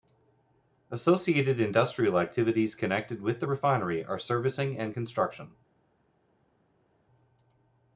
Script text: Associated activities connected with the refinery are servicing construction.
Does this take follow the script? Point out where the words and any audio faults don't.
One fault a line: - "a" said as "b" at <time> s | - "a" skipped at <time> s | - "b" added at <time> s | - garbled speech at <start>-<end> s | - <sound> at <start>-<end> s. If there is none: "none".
- "industrial" added at 1.6 s
- "and" added at 4.8 s